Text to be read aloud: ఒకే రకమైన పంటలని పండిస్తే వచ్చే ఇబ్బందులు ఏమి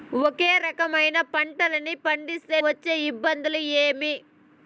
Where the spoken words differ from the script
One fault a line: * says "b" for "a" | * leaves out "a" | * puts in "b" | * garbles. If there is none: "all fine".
all fine